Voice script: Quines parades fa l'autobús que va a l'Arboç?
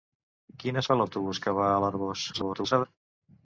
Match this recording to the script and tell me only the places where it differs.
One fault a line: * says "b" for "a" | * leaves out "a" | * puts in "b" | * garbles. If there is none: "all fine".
* leaves out "parades"
* garbles